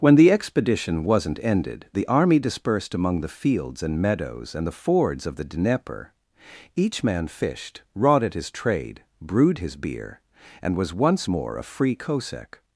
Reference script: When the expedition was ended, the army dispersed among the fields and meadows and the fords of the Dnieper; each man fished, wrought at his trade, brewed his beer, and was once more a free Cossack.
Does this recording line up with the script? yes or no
no